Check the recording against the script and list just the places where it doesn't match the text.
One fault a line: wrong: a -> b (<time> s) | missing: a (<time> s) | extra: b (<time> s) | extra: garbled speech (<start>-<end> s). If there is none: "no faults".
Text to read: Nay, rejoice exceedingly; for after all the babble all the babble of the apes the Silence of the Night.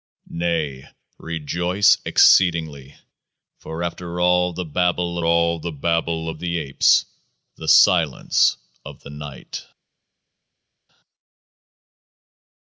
no faults